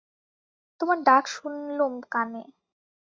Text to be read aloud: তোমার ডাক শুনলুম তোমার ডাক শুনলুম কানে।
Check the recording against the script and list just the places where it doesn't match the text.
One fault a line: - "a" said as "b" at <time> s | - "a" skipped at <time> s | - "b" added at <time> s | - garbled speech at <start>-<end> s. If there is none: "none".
- "তোমার ডাক শুনলুম" skipped at 1.9 s